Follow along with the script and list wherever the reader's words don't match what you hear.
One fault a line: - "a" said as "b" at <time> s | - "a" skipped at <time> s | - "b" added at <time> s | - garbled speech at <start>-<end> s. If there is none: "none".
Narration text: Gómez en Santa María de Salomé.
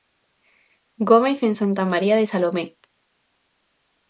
none